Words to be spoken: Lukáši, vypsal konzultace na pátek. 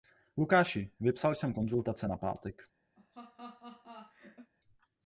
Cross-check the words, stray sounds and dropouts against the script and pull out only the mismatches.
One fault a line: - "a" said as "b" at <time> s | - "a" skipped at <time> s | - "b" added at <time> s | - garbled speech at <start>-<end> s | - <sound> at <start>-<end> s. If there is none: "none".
- "jsem" added at 1.4 s
- laugh at 3.0-4.5 s